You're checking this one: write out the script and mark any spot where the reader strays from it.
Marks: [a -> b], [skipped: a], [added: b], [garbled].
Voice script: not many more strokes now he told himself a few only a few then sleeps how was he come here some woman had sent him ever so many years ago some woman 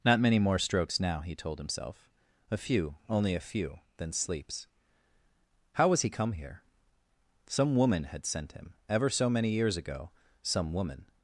not many more strokes now he told himself a few only a few then sleeps how was he come here some woman had sent him ever so many years ago some woman